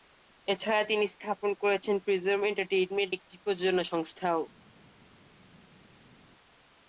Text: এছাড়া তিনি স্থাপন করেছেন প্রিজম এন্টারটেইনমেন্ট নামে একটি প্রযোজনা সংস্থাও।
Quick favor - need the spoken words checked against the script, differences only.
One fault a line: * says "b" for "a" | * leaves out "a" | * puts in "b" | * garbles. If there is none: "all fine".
* leaves out "নামে"